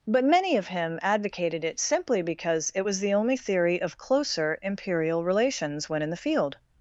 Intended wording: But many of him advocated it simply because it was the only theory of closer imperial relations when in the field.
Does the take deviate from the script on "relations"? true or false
false